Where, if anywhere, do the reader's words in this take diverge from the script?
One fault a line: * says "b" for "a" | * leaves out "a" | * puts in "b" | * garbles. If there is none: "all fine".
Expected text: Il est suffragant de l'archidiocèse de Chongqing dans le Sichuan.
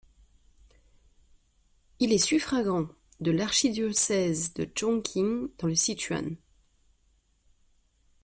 all fine